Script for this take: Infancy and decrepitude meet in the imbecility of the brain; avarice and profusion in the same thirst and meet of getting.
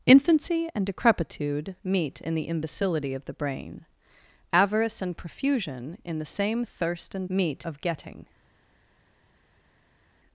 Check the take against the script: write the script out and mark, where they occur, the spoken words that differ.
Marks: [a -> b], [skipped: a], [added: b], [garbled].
Infancy and decrepitude meet in the imbecility of the brain; avarice and profusion in the same thirst and meet of getting.